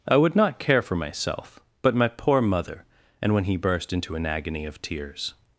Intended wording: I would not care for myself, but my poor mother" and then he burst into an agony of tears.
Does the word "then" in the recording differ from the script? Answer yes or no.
yes